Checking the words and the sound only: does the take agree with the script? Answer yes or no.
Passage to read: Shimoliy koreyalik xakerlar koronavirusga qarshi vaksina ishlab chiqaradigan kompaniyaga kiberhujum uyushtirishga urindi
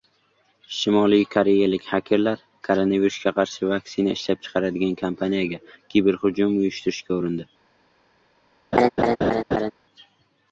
no